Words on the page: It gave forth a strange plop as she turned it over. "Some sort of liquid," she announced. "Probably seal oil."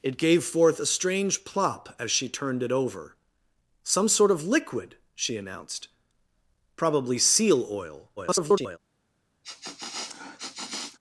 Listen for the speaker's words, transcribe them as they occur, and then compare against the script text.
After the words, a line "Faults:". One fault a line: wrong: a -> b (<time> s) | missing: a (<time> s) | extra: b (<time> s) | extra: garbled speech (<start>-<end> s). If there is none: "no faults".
It gave forth a strange plop as she turned it over. "Some sort of liquid," she announced. "Probably seal oil." [garbled]
Faults:
extra: garbled speech (8.2-8.8 s)